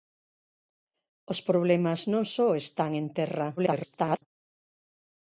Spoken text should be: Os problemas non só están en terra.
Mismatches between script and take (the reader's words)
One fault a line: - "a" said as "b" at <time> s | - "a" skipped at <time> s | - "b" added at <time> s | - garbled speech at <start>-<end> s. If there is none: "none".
- garbled speech at 3.6-4.2 s